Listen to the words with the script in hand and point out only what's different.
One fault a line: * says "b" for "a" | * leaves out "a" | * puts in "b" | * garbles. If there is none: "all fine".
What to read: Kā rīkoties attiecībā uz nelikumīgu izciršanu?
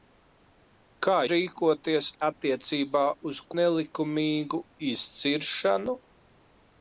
all fine